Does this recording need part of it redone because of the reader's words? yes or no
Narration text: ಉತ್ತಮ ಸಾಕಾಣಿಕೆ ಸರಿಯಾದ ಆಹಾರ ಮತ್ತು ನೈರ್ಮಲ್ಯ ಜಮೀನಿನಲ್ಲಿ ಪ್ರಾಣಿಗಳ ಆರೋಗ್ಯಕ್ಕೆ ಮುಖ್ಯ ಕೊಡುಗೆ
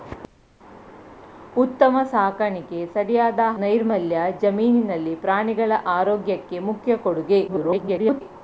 yes